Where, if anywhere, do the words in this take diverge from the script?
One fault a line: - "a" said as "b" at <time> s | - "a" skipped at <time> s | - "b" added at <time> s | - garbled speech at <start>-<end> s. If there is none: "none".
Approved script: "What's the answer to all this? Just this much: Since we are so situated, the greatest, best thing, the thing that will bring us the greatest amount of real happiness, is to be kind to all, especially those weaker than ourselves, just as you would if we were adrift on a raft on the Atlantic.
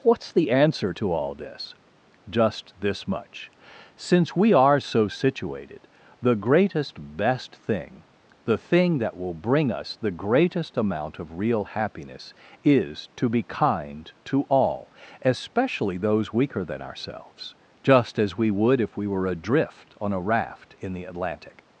- "you" said as "we" at 18.4 s
- "on" said as "in" at 20.8 s